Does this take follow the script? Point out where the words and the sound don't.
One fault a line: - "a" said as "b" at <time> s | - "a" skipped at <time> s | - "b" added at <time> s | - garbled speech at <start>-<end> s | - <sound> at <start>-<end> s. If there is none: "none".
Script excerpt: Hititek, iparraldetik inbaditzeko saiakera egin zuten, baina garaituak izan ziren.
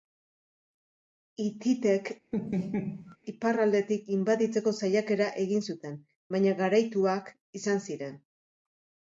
- laugh at 2.3-3.2 s